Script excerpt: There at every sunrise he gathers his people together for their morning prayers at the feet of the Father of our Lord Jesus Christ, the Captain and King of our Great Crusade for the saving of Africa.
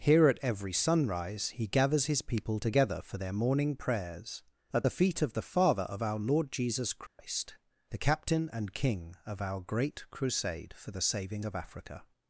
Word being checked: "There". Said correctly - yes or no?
no